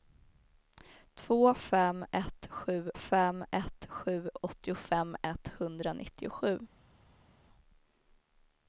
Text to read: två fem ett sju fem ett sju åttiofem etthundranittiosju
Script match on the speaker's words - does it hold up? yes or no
yes